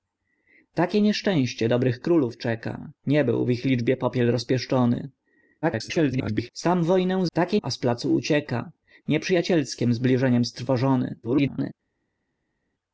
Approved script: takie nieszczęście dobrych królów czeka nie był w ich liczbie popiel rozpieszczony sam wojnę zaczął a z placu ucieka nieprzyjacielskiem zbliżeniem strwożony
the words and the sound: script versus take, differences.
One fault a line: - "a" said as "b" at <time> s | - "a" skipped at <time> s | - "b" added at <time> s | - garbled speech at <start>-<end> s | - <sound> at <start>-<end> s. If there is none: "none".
- garbled speech at 5.6-6.5 s
- "zaczął" said as "takie" at 7.3 s
- garbled speech at 11.2-11.7 s